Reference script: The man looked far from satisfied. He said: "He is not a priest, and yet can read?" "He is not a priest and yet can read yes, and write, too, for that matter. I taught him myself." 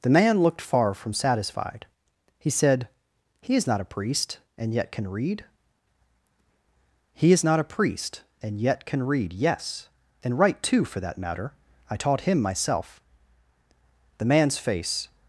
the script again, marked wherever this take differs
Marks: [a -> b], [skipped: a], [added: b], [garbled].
The man looked far from satisfied. He said: "He is not a priest, and yet can read?" "He is not a priest and yet can read yes, and write, too, for that matter. I taught him myself." [added: The man's face]